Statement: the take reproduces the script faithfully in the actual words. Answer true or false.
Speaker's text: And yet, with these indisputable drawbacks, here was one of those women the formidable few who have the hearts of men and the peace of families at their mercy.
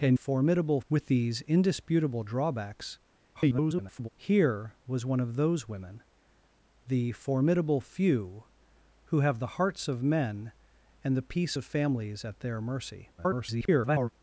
false